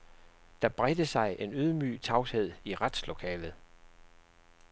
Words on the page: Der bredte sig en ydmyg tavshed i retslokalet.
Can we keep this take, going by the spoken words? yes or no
yes